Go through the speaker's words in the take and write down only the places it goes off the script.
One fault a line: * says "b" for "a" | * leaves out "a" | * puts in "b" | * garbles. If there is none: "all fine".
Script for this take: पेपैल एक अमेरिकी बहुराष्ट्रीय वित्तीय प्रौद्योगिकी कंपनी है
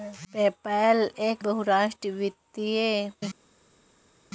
* leaves out "अमेरिकी"
* leaves out "प्रौद्योगिकी कंपनी"